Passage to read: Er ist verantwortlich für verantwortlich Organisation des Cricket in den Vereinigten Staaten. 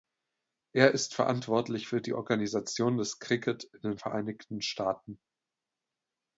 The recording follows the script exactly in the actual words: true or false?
false